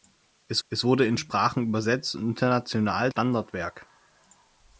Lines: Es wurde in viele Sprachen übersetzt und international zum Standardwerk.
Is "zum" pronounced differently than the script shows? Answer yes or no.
yes